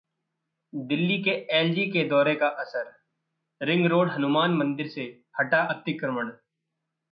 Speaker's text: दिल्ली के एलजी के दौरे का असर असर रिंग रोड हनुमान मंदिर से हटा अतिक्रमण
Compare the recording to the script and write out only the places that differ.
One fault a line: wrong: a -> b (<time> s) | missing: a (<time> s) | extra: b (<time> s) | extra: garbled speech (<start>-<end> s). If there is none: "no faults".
missing: असर (2.9 s)